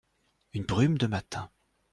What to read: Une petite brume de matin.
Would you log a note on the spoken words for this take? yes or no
yes